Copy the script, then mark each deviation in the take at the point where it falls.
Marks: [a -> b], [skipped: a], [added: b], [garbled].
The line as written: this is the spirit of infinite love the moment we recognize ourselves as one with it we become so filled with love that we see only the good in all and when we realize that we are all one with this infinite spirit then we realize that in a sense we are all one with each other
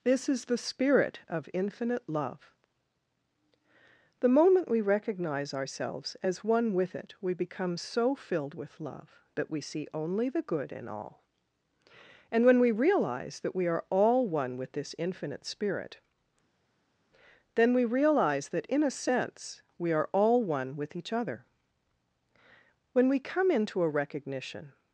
this is the spirit of infinite love the moment we recognize ourselves as one with it we become so filled with love that we see only the good in all and when we realize that we are all one with this infinite spirit then we realize that in a sense we are all one with each other [added: when we come into a recognition]